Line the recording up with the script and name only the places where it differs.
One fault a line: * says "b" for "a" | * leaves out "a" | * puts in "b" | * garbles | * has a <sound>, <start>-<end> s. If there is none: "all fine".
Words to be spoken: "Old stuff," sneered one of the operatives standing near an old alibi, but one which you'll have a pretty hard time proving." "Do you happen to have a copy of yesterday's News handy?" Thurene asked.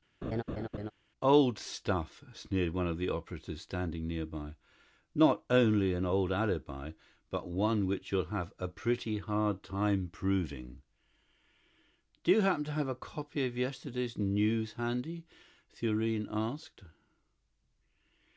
* has a laugh, 0.2-0.9 s
* puts in "by Not only"